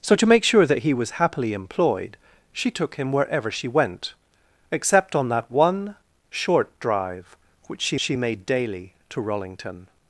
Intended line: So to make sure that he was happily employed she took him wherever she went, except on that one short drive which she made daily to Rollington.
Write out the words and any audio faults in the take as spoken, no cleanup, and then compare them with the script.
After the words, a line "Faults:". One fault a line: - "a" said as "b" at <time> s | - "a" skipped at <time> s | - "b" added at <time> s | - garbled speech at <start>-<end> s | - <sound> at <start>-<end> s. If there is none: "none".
So to make sure that he was happily employed she took him wherever she went, except on that one short drive which she she made daily to Rollington.
Faults:
- "she" added at 8.0 s